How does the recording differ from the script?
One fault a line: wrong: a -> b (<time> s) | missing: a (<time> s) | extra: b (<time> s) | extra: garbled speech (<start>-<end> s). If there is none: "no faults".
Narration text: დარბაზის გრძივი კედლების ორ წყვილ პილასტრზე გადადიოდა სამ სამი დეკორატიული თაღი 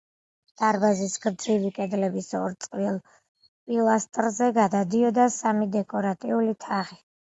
missing: სამ (5.3 s)